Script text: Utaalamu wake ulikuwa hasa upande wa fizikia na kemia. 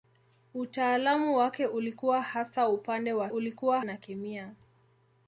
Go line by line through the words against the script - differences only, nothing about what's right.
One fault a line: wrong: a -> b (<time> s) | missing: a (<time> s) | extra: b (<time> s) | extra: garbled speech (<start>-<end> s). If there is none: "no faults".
wrong: fizikia -> ulikuwa (3.3 s)